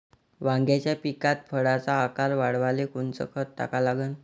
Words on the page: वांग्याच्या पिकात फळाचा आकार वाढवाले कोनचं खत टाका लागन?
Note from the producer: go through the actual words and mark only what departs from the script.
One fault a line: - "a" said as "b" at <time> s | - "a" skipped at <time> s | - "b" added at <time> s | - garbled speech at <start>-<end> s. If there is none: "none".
none